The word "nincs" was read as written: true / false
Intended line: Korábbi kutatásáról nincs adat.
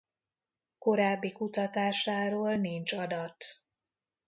true